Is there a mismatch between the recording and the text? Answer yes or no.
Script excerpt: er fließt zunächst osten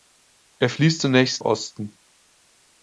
no